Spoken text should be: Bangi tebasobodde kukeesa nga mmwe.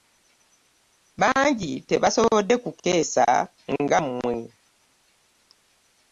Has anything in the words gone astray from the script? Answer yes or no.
no